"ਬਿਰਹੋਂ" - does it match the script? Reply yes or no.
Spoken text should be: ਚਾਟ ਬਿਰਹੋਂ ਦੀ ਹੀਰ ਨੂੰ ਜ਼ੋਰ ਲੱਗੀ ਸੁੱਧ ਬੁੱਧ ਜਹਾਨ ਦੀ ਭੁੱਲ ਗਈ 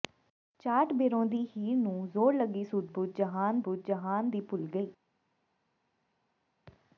yes